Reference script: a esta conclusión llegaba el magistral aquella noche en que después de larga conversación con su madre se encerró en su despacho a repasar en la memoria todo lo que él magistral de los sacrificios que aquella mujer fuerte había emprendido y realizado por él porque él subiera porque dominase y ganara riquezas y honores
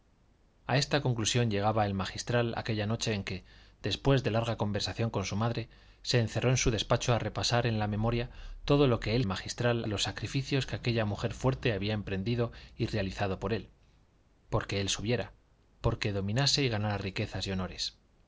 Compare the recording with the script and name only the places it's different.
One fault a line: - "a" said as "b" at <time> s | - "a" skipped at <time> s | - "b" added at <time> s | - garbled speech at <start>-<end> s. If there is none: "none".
none